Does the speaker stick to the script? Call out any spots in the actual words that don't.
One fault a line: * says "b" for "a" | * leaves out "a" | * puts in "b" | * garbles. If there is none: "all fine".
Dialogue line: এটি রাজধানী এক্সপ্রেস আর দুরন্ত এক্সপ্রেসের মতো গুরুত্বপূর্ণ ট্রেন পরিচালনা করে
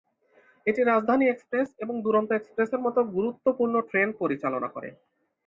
* says "এবং" for "আর"